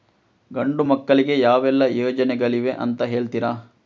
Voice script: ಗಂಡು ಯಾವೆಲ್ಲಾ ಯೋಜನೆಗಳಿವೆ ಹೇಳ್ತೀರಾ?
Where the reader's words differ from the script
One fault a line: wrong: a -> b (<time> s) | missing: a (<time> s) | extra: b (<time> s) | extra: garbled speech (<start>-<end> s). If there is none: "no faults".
extra: ಮಕ್ಕಳಿಗೆ (0.8 s)
extra: ಅಂತ (2.7 s)